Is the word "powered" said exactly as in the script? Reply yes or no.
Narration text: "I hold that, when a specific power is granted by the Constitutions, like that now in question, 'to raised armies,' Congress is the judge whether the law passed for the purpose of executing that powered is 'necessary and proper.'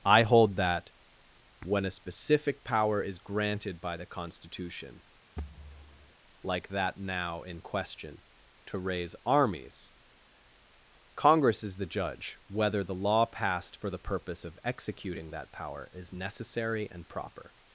no